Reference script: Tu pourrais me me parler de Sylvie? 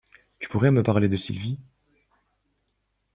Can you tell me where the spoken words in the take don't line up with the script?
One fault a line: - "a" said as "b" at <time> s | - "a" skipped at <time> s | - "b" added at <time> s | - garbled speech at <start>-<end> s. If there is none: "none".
- "me" skipped at 0.8 s